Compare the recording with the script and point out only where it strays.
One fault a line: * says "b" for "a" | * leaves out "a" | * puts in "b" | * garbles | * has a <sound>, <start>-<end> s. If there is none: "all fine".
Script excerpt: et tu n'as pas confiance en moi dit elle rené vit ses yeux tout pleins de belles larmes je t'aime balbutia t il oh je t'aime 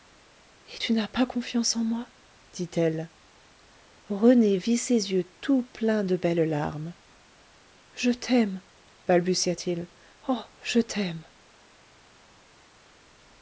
all fine